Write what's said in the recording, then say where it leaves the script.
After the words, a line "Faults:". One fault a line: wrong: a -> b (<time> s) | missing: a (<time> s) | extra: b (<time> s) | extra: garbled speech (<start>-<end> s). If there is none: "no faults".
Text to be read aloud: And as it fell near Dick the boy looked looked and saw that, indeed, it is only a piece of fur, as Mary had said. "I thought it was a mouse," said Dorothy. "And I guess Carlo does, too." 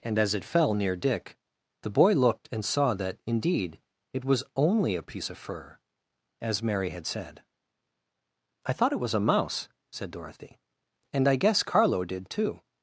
And as it fell near Dick the boy looked and saw that, indeed, it was only a piece of fur, as Mary had said. "I thought it was a mouse," said Dorothy. "And I guess Carlo did, too."
Faults:
missing: looked (2.5 s)
wrong: is -> was (4.2 s)
wrong: does -> did (12.0 s)